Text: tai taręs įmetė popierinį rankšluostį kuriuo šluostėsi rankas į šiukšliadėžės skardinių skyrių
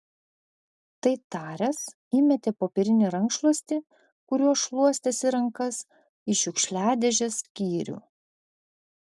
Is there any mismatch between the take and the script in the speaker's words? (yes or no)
yes